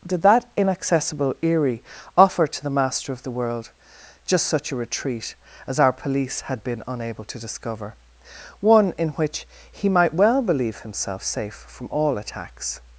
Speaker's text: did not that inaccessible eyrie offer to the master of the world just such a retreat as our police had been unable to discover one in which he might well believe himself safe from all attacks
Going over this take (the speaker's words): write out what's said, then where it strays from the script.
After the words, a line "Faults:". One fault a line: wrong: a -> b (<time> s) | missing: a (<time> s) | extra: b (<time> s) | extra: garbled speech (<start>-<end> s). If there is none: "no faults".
did that inaccessible eyrie offer to the master of the world just such a retreat as our police had been unable to discover one in which he might well believe himself safe from all attacks
Faults:
missing: not (0.2 s)